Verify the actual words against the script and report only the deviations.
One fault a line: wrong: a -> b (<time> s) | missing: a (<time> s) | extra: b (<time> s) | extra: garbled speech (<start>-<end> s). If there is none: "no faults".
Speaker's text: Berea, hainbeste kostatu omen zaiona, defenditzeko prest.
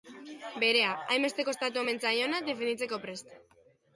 no faults